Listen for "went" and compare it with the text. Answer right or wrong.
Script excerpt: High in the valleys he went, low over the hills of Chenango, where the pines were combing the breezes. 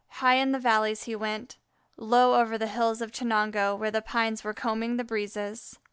right